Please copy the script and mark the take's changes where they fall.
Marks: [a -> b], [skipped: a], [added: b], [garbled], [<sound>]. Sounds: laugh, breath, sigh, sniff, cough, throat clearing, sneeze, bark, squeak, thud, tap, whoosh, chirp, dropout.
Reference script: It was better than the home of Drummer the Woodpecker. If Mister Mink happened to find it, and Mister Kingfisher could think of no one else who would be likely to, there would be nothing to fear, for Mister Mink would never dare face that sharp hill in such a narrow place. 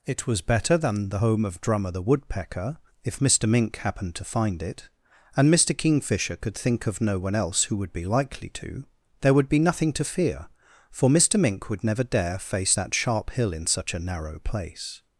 It was better than the home of Drummer the Woodpecker. If Mister Mink happened to find it, and Mister Kingfisher could think of no one else who would be likely to, there would be nothing to fear, for Mister Mink would never dare face that sharp hill in such a narrow place.